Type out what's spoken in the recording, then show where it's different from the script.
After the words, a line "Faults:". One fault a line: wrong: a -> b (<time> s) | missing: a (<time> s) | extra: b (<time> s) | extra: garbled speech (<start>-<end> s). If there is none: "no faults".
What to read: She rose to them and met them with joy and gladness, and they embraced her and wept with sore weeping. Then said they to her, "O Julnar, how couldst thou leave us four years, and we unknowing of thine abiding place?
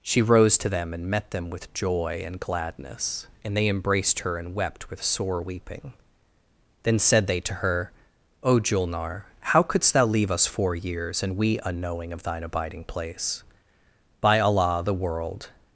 She rose to them and met them with joy and gladness, and they embraced her and wept with sore weeping. Then said they to her, "O Julnar, how couldst thou leave us four years, and we unknowing of thine abiding place? By Allah the world
Faults:
extra: By Allah the world (14.2 s)